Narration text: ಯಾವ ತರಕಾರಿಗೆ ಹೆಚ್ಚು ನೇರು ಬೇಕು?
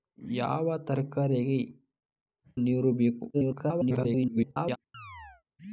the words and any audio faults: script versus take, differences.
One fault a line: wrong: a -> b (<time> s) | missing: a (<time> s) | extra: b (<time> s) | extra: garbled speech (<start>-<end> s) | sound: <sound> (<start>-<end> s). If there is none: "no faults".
missing: ಹೆಚ್ಚು (1.6 s)
extra: garbled speech (3.3-4.8 s)
sound: chirp (4.9-5.4 s)